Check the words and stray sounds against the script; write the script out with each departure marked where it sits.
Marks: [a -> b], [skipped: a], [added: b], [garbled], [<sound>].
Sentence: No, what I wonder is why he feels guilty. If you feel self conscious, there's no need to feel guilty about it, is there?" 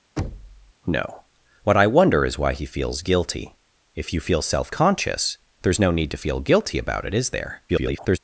[thud] No, what I wonder is why he feels guilty. If you feel self conscious, there's no need to feel guilty about it, is there?" [garbled]